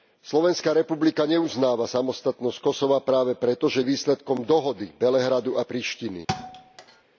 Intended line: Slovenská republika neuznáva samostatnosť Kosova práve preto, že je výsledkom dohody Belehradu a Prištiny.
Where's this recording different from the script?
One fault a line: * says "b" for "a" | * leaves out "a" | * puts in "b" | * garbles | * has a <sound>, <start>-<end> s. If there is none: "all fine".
* has a thud, 6.3-7.0 s